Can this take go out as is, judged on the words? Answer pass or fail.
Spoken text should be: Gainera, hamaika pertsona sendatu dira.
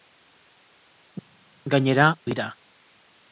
fail